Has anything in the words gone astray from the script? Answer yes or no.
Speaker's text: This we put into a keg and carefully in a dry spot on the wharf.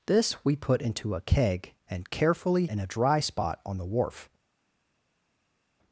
no